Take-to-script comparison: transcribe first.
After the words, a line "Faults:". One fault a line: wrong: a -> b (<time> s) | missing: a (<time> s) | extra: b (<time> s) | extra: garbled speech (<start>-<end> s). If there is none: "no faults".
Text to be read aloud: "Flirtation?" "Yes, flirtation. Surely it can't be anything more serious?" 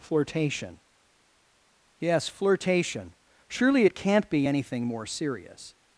"Flirtation?" "Yes, flirtation. Surely it can't be anything more serious?"
Faults:
no faults